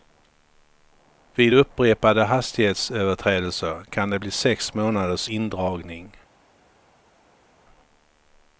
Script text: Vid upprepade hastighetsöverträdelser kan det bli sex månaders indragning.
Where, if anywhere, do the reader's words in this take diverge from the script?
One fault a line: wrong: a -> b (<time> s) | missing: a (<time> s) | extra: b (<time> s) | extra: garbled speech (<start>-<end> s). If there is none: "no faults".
no faults